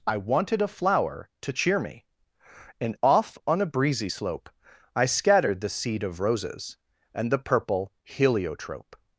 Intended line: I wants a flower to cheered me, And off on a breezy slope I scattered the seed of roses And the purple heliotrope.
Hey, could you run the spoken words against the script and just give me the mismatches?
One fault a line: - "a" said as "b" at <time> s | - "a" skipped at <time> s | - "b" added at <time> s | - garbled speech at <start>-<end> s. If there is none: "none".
- "wants" said as "wanted" at 0.2 s
- "cheered" said as "cheer" at 1.5 s